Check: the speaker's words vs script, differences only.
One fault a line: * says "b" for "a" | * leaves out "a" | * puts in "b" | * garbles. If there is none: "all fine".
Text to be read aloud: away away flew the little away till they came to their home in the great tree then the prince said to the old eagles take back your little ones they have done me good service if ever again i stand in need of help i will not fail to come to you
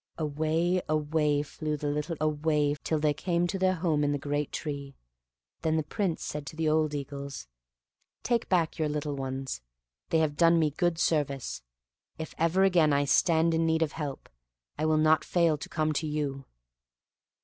all fine